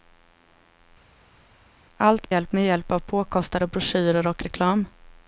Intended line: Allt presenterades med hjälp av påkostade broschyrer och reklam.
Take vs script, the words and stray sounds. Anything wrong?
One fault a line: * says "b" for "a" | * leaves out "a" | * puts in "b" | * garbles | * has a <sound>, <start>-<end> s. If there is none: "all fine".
* says "hjälp" for "presenterades"